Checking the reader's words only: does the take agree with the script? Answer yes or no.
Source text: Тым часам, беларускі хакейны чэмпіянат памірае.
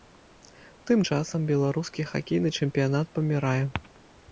yes